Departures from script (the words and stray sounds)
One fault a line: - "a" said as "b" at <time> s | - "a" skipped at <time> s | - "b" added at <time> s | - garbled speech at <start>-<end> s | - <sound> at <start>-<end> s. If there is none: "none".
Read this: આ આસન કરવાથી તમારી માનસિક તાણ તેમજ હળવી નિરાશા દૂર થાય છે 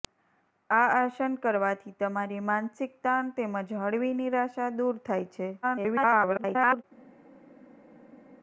- garbled speech at 5.6-6.8 s